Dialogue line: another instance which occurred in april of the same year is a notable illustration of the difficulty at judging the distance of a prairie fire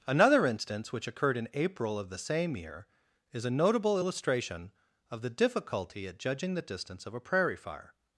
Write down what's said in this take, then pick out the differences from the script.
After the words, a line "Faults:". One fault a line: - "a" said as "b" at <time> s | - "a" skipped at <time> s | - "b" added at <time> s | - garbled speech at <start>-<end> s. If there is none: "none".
another instance which occurred in april of the same year is a notable illustration of the difficulty at judging the distance of a prairie fire
Faults:
none